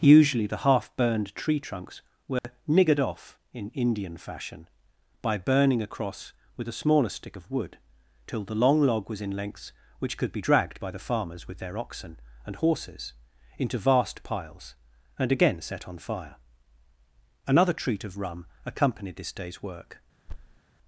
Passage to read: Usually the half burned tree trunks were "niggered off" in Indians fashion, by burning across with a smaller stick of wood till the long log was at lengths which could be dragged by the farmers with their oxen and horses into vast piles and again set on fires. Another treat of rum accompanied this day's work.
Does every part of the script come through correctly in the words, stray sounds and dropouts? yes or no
no